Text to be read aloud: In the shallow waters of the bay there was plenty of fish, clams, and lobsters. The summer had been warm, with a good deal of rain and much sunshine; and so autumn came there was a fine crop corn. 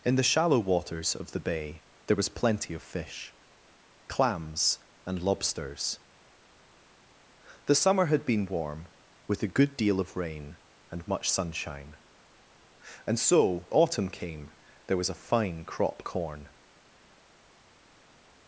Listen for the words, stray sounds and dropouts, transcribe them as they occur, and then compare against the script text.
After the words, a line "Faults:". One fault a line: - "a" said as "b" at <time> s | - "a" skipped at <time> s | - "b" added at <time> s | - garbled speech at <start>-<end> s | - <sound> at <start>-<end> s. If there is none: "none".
In the shallow waters of the bay there was plenty of fish, clams, and lobsters. The summer had been warm, with a good deal of rain and much sunshine; and so autumn came there was a fine crop corn.
Faults:
none